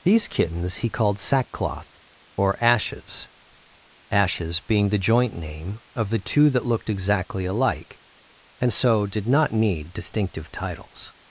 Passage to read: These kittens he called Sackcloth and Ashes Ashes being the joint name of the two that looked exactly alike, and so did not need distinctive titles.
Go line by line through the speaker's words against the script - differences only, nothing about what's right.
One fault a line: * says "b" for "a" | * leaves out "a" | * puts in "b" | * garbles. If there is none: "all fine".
* says "or" for "and"